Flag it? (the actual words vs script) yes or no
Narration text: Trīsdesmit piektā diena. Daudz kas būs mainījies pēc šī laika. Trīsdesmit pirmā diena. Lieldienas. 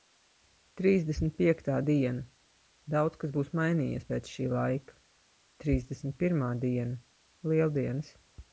no